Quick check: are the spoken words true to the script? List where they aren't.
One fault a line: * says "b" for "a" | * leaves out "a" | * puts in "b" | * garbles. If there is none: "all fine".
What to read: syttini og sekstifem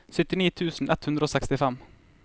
* puts in "tusen ett hundre"